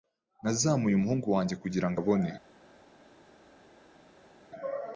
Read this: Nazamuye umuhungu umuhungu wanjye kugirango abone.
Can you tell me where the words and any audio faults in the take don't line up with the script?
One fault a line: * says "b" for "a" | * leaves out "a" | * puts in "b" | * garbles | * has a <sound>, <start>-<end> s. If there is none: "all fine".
* leaves out "umuhungu"